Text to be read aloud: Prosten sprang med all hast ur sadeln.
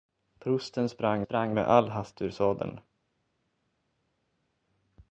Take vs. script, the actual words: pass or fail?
fail